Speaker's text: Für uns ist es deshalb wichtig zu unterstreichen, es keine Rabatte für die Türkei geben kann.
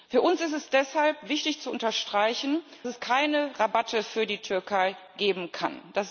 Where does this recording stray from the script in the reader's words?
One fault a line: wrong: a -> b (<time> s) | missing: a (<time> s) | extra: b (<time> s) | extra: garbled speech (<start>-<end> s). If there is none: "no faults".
no faults